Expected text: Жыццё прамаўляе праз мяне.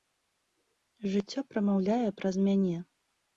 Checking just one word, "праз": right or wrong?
right